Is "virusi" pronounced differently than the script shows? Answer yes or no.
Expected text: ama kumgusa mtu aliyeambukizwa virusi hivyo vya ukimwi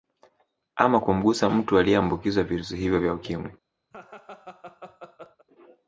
no